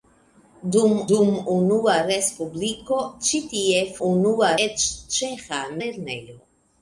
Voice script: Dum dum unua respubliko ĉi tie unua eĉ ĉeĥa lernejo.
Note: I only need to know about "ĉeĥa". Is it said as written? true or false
true